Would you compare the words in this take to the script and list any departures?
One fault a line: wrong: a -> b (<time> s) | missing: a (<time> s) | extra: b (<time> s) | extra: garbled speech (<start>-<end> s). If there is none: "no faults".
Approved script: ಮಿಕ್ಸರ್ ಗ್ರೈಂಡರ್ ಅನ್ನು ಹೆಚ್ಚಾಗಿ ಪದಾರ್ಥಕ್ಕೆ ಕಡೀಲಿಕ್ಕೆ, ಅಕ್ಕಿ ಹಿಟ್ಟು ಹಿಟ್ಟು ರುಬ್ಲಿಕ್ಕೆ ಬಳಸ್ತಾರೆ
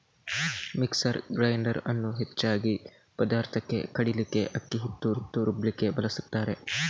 no faults